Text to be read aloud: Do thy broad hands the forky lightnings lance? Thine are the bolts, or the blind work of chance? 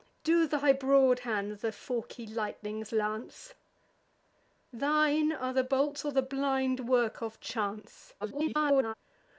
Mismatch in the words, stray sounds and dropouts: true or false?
true